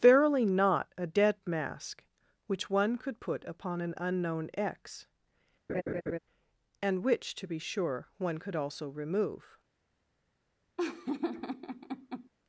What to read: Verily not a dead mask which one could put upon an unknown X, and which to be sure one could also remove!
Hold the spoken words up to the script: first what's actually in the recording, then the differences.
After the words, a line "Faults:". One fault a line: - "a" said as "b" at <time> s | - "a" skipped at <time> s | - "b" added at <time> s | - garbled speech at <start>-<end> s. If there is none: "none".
Verily not a dead mask which one could put upon an unknown X, and which to be sure one could also remove!
Faults:
none